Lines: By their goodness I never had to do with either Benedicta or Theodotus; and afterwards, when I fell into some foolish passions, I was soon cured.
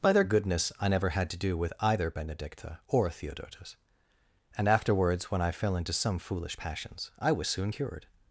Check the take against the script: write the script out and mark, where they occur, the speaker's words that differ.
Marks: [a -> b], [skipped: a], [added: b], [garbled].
By their goodness I never had to do with either Benedicta or Theodotus; and afterwards, when I fell into some foolish passions, I was soon cured.